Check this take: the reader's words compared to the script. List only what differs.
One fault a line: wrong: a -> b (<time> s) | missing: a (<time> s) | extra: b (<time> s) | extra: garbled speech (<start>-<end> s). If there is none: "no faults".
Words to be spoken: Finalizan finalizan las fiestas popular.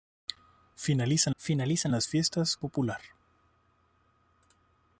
no faults